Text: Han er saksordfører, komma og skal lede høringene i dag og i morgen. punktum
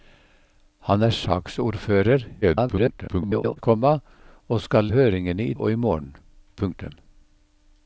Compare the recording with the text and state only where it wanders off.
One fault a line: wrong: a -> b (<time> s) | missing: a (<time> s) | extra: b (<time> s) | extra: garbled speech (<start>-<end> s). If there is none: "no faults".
extra: garbled speech (2.4-3.6 s)
missing: lede (4.9 s)
missing: dag (5.5 s)